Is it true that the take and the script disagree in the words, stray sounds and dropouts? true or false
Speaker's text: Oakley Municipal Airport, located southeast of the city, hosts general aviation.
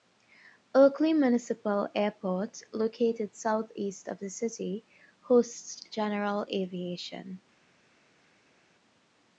false